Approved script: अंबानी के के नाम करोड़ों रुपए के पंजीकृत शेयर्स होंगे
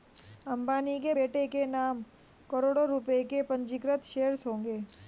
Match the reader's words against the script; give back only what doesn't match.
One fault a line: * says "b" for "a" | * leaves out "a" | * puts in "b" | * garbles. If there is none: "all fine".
* puts in "बेटे"